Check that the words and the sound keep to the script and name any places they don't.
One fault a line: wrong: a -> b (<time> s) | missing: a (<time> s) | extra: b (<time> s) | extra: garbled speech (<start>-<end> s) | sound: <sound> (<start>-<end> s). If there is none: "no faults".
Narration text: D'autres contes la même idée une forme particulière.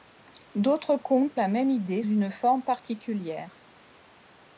no faults